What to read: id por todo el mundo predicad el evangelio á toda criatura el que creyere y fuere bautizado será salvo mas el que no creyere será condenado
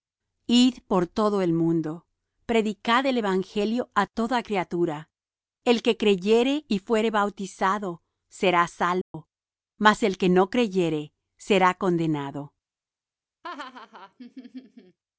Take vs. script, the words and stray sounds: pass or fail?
fail